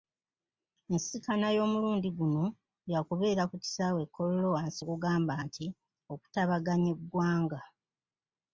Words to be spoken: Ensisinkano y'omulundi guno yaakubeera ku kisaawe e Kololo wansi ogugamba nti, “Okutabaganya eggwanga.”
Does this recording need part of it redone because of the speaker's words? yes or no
no